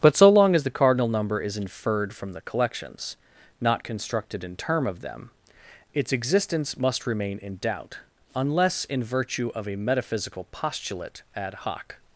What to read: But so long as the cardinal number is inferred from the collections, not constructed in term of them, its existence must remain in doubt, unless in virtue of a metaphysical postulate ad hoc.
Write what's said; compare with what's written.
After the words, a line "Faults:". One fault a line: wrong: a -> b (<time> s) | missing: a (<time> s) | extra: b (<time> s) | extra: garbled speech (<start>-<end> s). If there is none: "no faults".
But so long as the cardinal number is inferred from the collections, not constructed in term of them, its existence must remain in doubt, unless in virtue of a metaphysical postulate ad hoc.
Faults:
no faults